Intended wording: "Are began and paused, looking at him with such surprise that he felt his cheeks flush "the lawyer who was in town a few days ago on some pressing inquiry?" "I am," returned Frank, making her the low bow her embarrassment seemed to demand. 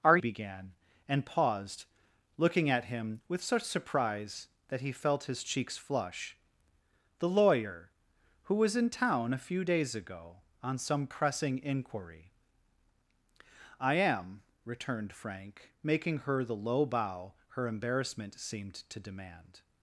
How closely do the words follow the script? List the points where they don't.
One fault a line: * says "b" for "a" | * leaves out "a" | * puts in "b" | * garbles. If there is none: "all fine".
all fine